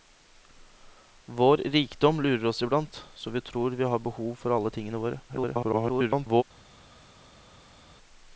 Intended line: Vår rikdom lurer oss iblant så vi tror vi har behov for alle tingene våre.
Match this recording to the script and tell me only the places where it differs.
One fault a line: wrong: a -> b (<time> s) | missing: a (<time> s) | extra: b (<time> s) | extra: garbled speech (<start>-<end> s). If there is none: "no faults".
extra: garbled speech (5.3-6.4 s)